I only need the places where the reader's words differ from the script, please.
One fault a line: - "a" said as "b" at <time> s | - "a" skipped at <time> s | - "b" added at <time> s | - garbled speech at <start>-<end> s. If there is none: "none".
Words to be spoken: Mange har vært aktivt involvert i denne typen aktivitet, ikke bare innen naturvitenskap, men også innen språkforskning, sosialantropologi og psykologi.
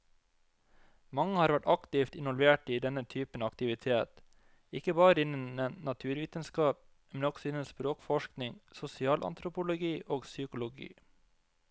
none